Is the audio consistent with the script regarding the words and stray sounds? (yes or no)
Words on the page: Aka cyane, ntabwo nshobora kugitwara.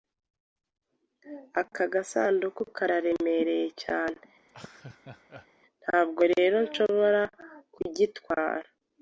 no